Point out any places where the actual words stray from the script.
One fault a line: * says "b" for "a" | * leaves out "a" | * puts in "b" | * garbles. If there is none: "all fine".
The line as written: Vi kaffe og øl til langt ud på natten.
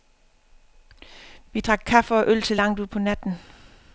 * puts in "drak"